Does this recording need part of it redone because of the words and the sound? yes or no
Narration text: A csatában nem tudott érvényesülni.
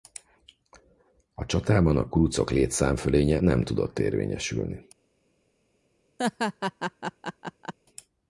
yes